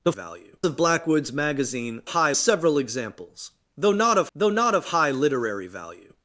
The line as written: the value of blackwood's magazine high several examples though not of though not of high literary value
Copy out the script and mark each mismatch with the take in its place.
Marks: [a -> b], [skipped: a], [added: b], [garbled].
the value of blackwood's magazine high several examples though not of though not of high literary value